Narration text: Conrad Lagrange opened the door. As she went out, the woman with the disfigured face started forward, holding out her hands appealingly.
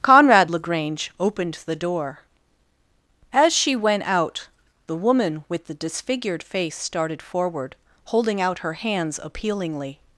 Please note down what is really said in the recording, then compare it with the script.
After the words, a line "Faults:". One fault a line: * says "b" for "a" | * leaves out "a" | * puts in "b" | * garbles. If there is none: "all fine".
Conrad Lagrange opened the door. As she went out, the woman with the disfigured face started forward, holding out her hands appealingly.
Faults:
all fine